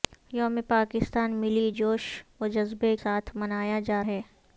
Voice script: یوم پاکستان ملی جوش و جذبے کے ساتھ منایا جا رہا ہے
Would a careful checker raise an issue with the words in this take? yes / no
yes